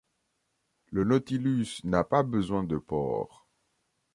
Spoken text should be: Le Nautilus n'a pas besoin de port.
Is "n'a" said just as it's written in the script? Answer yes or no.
yes